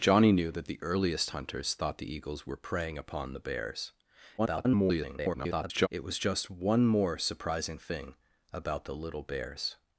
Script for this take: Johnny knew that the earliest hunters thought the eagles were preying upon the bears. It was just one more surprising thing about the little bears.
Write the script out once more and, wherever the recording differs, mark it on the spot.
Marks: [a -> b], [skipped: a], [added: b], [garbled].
Johnny knew that the earliest hunters thought the eagles were preying upon the bears. [garbled] It was just one more surprising thing about the little bears.